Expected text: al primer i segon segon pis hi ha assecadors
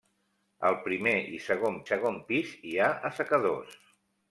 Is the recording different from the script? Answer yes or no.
no